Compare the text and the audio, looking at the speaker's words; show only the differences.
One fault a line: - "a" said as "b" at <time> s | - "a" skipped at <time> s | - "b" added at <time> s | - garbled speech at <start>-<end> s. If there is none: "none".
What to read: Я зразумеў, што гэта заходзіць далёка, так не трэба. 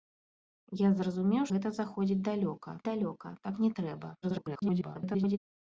- "што" skipped at 1.4 s
- "далёка" added at 2.9 s
- garbled speech at 4.2-5.4 s